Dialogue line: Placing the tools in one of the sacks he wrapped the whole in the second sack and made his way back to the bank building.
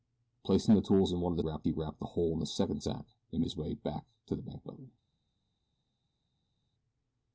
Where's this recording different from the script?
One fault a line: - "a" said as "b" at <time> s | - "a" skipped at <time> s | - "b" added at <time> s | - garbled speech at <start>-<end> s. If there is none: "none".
- "sacks" said as "wrapped" at 1.4 s
- "made" skipped at 3.4 s